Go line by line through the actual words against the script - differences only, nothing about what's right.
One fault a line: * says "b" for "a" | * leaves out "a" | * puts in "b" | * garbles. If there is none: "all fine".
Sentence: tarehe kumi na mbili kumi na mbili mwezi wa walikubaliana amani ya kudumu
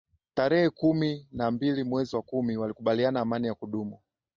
* leaves out "kumi na mbili"
* puts in "kumi"